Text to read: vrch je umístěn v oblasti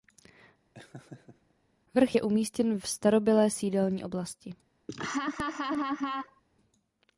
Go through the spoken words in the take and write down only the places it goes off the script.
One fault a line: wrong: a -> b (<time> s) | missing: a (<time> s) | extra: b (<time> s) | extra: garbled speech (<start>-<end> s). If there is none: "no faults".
extra: starobylé sídelní (2.9 s)